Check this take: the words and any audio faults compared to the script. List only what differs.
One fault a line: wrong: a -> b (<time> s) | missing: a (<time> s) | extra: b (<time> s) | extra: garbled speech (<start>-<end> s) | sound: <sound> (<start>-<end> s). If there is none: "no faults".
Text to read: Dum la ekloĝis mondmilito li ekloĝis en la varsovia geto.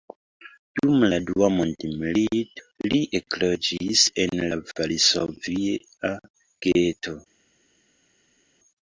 wrong: ekloĝis -> dua (1.2 s)